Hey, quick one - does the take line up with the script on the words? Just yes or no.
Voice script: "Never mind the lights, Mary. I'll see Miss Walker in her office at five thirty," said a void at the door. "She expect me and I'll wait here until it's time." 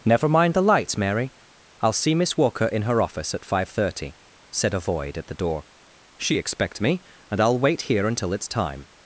yes